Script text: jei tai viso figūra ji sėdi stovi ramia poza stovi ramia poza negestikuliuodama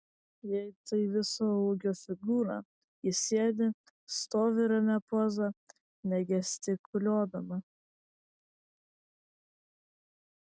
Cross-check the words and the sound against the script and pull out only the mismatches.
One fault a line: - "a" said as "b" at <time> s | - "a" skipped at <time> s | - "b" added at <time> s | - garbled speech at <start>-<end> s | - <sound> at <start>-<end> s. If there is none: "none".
- "ūgio" added at 1.6 s
- "stovi ramia poza" skipped at 5.5 s